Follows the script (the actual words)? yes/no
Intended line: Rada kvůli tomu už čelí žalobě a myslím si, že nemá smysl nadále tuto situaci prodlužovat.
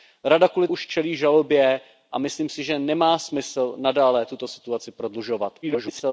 no